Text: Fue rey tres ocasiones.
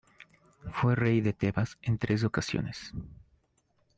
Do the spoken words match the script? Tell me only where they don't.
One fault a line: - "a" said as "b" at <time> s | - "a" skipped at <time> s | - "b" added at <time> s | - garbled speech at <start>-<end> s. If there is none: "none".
- "de Tebas en" added at 1.2 s